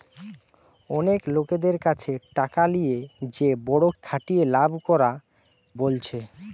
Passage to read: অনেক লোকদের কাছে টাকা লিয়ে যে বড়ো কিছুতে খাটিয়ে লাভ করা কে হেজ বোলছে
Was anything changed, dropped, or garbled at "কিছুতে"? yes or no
yes